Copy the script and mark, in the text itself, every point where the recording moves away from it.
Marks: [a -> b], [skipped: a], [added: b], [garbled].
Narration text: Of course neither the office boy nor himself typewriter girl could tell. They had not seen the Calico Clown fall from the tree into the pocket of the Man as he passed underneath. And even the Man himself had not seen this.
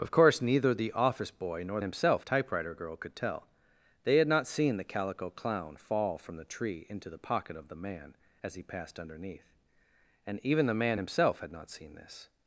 Of course neither the office boy nor himself typewriter girl could tell. They had not seen the Calico Clown fall from the tree into the pocket of the Man as he passed underneath. And even the Man himself had not seen this.